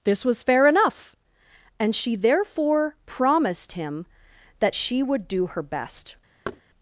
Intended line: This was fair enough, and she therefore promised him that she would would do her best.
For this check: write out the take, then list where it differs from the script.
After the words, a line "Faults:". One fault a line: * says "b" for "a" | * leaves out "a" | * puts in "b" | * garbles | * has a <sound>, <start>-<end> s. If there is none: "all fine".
This was fair enough, and she therefore promised him that she would do her best.
Faults:
* leaves out "would"
* has a thud, 6.4-6.6 s